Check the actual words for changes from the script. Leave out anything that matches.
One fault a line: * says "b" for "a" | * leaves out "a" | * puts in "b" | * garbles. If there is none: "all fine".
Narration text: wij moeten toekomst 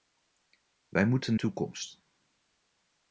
all fine